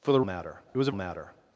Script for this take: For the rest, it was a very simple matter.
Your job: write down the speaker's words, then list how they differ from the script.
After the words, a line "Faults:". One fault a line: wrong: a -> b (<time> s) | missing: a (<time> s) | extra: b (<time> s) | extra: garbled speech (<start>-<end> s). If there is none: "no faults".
For the matter, it was a matter.
Faults:
wrong: rest -> matter (0.2 s)
missing: very simple (0.9 s)